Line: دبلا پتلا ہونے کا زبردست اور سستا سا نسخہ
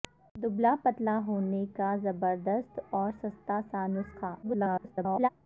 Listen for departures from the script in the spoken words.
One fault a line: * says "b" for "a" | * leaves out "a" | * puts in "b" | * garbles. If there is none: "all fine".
* garbles